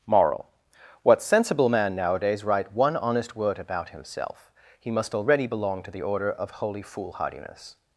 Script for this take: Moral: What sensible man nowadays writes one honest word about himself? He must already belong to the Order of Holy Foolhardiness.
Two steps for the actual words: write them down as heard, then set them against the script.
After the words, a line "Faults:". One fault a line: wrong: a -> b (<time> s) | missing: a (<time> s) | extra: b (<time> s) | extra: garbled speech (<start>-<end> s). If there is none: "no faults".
Moral: What sensible man nowadays write one honest word about himself? He must already belong to the Order of Holy Foolhardiness.
Faults:
wrong: writes -> write (2.4 s)